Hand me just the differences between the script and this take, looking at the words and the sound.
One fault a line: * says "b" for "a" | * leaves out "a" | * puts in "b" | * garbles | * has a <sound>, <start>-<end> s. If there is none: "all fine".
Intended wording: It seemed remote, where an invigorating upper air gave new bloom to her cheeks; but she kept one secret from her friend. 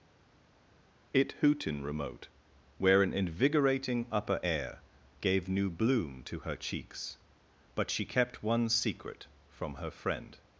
* says "hootin" for "seemed"